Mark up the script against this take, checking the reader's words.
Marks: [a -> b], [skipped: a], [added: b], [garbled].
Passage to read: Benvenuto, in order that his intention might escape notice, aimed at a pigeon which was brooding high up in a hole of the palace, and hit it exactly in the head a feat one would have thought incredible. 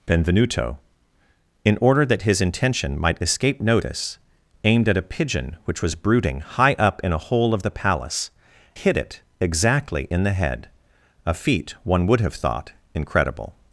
Benvenuto, in order that his intention might escape notice, aimed at a pigeon which was brooding high up in a hole of the palace, [skipped: and] hit it exactly in the head a feat one would have thought incredible.